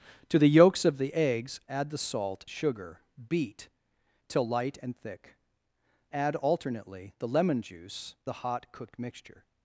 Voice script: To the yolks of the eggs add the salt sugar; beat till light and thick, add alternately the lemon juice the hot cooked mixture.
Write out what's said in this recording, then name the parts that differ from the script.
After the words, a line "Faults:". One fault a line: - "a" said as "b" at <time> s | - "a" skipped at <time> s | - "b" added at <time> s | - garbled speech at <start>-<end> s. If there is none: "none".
To the yolks of the eggs add the salt sugar; beat till light and thick, add alternately the lemon juice the hot cooked mixture.
Faults:
none